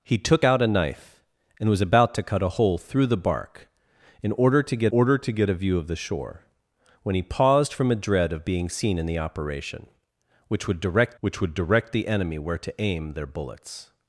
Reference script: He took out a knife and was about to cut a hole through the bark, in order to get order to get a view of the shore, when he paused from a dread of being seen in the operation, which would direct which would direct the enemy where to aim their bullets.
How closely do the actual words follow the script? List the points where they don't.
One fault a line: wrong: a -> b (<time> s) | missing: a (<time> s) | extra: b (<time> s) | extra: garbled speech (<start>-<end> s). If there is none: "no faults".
no faults